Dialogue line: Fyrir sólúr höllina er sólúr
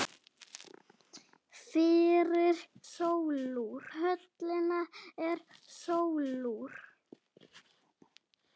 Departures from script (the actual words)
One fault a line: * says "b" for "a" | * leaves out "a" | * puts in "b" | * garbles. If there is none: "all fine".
all fine